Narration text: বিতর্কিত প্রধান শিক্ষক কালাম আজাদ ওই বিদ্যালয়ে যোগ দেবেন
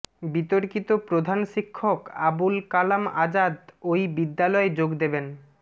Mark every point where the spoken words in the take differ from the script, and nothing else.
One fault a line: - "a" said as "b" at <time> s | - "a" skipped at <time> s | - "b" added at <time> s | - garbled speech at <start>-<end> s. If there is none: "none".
- "আবুল" added at 2.2 s